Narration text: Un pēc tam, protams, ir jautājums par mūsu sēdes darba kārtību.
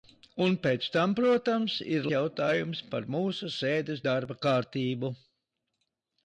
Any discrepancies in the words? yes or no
no